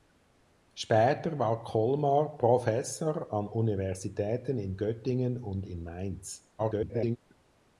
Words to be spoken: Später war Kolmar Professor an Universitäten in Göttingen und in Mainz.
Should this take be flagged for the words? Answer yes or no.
yes